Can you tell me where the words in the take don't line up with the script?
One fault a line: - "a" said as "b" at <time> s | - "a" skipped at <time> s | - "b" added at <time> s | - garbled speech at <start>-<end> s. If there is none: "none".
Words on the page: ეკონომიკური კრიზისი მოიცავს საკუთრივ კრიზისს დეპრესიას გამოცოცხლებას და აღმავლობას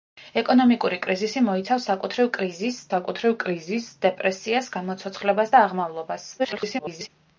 - "საკუთრივ კრიზისს" added at 2.9 s
- garbled speech at 6.4-7.1 s